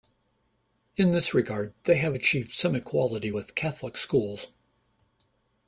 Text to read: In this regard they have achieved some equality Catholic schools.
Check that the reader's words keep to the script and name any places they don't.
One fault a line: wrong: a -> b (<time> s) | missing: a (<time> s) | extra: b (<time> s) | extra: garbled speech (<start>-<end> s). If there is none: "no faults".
extra: with (3.3 s)